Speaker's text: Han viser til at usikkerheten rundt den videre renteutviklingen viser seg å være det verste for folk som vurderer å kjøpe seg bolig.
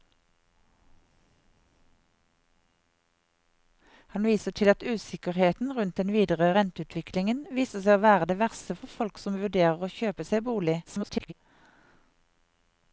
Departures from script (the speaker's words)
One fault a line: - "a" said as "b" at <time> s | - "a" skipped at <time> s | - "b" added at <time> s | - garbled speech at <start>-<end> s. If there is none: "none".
- garbled speech at 10.8-11.3 s